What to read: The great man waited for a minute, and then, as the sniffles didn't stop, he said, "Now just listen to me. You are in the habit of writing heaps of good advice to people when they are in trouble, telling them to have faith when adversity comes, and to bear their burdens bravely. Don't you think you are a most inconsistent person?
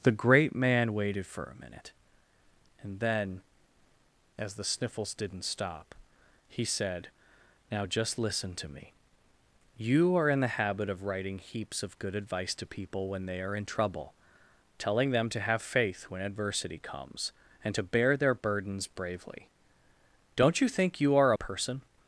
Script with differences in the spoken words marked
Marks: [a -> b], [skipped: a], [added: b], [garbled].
The great man waited for a minute, and then, as the sniffles didn't stop, he said, "Now just listen to me. You are in the habit of writing heaps of good advice to people when they are in trouble, telling them to have faith when adversity comes, and to bear their burdens bravely. Don't you think you are [skipped: a most inconsistent] person?